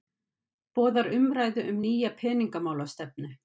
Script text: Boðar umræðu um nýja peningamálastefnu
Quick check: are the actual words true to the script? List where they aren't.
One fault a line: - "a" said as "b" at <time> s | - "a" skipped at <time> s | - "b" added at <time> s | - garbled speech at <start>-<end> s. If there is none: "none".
none